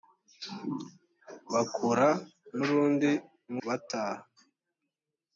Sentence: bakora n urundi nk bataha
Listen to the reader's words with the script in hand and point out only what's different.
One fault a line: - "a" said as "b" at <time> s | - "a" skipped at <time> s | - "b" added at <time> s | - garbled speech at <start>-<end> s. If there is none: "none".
none